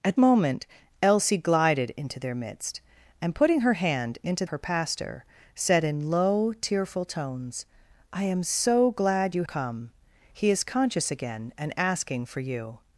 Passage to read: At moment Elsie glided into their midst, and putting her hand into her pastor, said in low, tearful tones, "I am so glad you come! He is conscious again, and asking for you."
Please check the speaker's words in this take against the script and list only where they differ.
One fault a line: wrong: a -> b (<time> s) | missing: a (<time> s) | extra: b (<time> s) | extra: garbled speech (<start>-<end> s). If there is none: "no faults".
no faults